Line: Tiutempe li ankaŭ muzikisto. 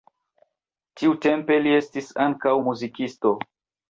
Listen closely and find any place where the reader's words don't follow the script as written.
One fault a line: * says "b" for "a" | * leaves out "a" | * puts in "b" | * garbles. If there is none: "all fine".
* puts in "estis"